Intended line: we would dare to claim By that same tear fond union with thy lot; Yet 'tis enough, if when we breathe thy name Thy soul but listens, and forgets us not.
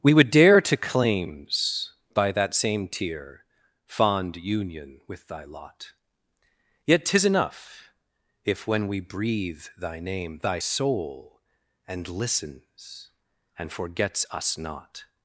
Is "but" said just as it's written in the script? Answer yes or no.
no